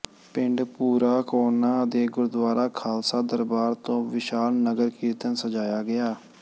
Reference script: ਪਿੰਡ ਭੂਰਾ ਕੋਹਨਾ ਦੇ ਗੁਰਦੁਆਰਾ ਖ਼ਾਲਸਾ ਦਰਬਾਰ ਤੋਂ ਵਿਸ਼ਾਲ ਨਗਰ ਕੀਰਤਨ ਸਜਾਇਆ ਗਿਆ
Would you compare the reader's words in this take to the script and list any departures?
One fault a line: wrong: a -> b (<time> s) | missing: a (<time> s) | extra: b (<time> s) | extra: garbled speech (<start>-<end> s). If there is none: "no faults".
no faults